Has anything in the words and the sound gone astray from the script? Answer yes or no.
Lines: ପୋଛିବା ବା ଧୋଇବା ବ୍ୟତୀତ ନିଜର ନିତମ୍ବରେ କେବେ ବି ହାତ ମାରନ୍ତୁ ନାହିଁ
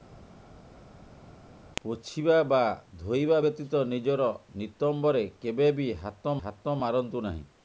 yes